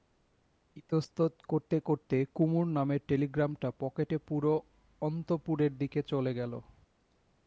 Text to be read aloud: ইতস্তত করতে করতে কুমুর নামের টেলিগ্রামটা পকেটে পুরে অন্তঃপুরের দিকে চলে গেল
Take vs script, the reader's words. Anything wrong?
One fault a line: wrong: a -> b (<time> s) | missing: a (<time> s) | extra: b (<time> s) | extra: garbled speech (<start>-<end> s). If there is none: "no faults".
no faults